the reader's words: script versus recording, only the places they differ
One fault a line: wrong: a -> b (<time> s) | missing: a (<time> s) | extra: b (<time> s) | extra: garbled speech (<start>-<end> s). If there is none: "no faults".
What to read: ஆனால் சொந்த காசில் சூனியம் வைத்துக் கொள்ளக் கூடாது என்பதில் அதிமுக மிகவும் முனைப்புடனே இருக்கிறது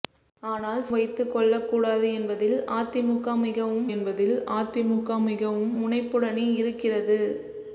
wrong: சொந்த காசில் சூனியம் வைத்துக் கொள்ளக் கூடாது -> வைத்துக் கொள்ளக் கூடாது என்பதில் அதிமுக மிகவும் (0.9 s)